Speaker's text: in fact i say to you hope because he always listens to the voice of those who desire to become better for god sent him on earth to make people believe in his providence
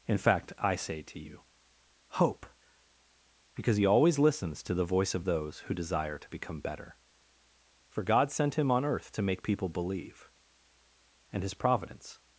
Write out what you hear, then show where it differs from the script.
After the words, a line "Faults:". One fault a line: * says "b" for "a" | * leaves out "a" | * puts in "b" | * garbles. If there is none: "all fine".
in fact i say to you hope because he always listens to the voice of those who desire to become better for god sent him on earth to make people believe and his providence
Faults:
* says "and" for "in"